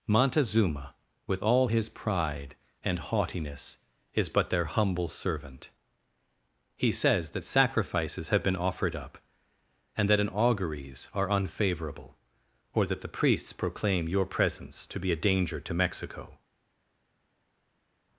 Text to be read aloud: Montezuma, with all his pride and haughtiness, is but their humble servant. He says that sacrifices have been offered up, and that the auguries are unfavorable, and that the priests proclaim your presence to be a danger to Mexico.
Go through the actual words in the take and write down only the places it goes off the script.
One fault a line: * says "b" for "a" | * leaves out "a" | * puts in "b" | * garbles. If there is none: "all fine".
* says "an" for "the"
* says "or" for "and"